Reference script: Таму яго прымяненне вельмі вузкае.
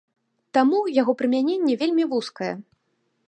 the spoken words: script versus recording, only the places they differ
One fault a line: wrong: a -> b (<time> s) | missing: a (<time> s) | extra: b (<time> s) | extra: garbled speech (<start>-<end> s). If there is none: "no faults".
no faults